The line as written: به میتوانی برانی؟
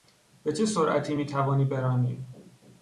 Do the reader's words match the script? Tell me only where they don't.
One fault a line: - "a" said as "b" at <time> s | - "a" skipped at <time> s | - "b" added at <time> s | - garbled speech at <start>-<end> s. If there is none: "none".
- "چه سرعتی" added at 0.5 s